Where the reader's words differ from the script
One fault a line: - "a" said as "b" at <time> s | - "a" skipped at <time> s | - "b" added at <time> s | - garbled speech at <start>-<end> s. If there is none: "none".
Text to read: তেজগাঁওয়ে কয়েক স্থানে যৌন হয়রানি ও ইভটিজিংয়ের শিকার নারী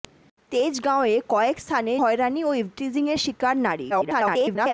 - "যৌন" skipped at 1.9 s
- garbled speech at 3.9-4.7 s